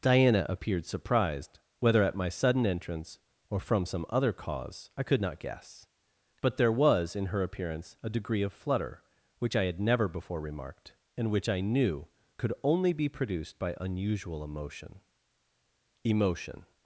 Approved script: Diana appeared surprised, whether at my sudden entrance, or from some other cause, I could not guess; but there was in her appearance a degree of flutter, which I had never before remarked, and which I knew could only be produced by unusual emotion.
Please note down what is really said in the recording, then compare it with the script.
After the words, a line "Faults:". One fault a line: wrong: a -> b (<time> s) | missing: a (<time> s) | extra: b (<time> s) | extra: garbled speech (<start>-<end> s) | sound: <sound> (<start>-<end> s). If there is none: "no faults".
Diana appeared surprised, whether at my sudden entrance, or from some other cause, I could not guess; but there was in her appearance a degree of flutter, which I had never before remarked, and which I knew could only be produced by unusual emotion emotion.
Faults:
extra: emotion (16.0 s)